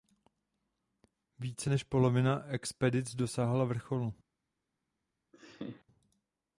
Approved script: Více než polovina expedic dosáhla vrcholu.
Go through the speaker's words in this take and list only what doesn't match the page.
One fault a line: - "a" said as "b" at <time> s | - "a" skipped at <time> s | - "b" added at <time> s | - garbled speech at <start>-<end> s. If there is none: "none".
none